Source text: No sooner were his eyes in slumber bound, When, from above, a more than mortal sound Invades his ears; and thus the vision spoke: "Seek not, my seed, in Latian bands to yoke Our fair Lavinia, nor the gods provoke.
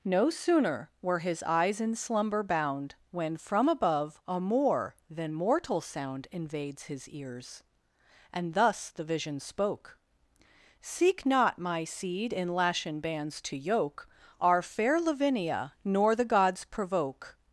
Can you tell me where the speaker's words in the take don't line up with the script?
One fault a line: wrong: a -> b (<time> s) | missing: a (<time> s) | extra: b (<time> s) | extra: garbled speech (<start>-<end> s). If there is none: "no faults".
no faults